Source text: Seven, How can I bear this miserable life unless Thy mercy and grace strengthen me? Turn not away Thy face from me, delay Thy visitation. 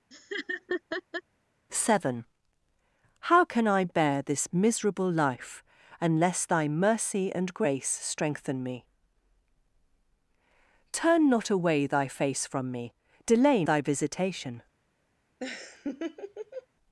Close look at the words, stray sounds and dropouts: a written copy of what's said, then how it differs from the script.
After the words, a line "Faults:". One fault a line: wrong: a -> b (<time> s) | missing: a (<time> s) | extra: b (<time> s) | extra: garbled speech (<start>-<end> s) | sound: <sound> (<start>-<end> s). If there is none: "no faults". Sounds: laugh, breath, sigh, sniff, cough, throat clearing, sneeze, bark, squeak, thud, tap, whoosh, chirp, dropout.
Seven, How can I bear this miserable life unless Thy mercy and grace strengthen me? Turn not away Thy face from me, delay Thy visitation.
Faults:
sound: laugh (0.1-1.2 s)
sound: laugh (15.4-16.7 s)